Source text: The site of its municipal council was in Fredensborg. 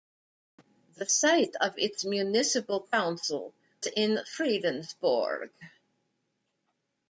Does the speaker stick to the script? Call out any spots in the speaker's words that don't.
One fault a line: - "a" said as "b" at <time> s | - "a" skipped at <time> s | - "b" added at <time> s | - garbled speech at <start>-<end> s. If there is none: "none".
- "was" skipped at 3.5 s